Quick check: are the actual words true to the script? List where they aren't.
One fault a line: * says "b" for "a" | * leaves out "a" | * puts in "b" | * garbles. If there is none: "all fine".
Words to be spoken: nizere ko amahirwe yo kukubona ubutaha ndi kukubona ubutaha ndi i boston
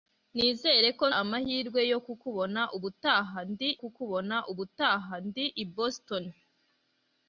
all fine